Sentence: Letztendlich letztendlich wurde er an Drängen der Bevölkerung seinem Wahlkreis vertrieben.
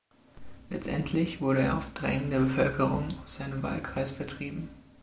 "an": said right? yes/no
no